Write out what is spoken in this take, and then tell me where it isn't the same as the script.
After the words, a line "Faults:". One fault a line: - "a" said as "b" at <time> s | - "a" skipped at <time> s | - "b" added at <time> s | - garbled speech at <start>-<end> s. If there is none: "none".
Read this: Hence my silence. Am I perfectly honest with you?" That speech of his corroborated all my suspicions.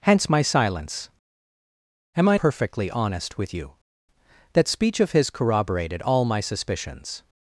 Hence my silence. Am I perfectly honest with you?" That speech of his corroborated all my suspicions.
Faults:
none